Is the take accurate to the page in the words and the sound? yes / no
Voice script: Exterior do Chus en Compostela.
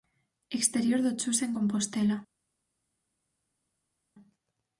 yes